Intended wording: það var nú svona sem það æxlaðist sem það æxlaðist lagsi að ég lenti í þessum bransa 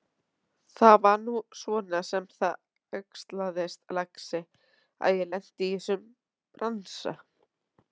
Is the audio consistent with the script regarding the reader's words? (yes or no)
no